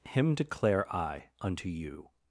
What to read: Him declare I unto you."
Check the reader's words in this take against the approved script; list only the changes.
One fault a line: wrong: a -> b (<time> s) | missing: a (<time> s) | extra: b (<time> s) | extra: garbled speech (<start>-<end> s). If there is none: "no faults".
no faults